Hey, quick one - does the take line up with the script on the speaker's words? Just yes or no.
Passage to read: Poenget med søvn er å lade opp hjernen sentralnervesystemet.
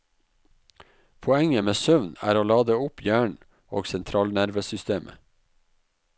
no